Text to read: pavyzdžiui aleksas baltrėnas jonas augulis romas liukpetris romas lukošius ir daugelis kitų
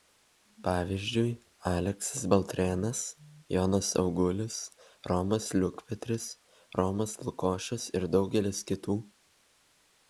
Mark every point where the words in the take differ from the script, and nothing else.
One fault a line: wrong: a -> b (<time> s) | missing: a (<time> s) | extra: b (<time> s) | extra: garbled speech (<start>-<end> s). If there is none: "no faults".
no faults